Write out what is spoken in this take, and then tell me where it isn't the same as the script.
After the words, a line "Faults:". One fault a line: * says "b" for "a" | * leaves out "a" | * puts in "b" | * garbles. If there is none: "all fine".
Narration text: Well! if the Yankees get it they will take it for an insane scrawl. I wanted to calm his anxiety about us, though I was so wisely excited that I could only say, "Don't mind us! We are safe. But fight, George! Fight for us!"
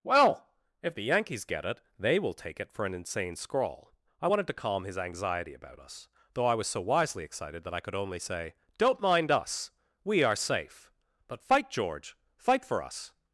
Well! if the Yankees get it they will take it for an insane scrawl. I wanted to calm his anxiety about us, though I was so wisely excited that I could only say, "Don't mind us! We are safe. But fight, George! Fight for us!"
Faults:
all fine